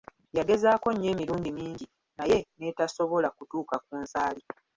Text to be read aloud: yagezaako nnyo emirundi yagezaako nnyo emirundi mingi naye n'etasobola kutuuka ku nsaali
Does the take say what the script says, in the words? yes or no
no